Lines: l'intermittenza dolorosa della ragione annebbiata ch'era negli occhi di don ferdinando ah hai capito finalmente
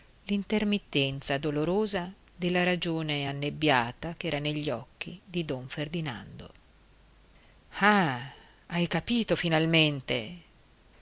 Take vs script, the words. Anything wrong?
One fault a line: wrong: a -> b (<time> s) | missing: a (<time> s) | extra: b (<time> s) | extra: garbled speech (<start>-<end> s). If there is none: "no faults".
no faults